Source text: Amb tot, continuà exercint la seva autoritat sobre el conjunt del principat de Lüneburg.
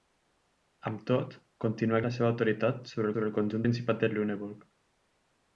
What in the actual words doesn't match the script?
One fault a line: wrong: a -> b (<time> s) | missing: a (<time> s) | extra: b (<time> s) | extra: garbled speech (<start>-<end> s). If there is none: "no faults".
missing: exercint (2.0 s)
extra: sobre (3.1 s)
missing: del (3.7 s)